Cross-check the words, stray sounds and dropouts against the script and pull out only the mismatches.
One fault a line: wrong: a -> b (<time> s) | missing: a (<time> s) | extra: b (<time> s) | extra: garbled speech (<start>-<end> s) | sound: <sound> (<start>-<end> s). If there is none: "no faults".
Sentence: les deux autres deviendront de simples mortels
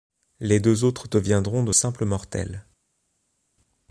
no faults